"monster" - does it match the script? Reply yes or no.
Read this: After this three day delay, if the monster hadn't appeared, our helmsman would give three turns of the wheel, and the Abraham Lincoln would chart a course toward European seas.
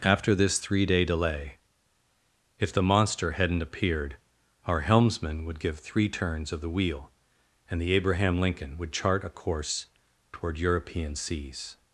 yes